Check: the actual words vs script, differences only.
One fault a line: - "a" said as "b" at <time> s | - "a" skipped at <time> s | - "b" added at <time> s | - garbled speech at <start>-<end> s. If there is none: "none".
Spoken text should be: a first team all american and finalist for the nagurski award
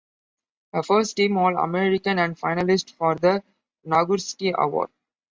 none